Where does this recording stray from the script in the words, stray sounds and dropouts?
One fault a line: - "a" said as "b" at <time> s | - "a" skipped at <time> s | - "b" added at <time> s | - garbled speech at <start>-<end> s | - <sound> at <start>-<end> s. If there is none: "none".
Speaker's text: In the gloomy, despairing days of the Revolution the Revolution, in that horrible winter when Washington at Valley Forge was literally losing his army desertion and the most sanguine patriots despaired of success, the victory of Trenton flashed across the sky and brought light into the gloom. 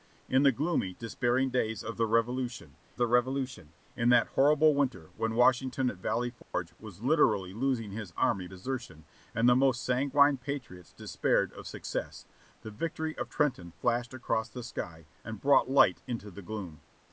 - dropout at 6.4-6.5 s